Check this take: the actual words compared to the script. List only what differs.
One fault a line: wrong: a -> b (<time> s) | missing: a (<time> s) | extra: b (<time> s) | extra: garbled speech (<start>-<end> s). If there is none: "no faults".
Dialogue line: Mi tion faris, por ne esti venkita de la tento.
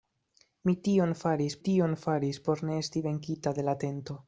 extra: tion faris (1.7 s)